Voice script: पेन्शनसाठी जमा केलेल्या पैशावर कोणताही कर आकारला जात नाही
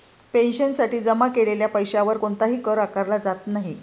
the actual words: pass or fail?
pass